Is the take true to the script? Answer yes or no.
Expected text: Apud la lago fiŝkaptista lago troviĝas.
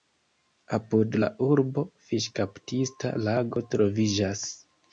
no